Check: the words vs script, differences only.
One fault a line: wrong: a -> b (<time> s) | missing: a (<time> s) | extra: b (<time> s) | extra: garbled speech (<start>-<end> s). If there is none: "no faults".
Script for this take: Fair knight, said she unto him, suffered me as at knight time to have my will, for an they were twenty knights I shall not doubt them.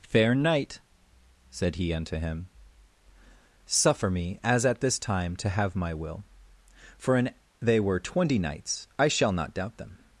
wrong: she -> he (1.8 s)
wrong: suffered -> suffer (3.6 s)
wrong: knight -> this (4.8 s)